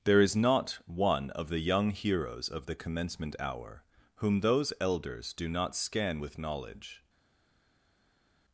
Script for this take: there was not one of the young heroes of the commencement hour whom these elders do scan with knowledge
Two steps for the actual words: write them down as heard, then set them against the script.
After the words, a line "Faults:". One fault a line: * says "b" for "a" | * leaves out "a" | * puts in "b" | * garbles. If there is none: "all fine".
there is not one of the young heroes of the commencement hour whom those elders do not scan with knowledge
Faults:
* says "is" for "was"
* says "those" for "these"
* puts in "not"